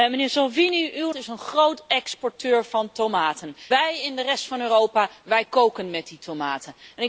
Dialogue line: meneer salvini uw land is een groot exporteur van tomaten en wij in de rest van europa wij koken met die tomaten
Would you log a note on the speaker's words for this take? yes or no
yes